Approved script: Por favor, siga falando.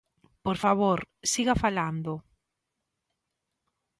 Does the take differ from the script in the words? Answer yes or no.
no